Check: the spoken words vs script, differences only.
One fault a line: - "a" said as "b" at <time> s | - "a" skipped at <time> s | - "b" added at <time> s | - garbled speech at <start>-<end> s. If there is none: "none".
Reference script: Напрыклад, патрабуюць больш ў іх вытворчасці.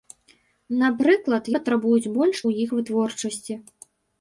none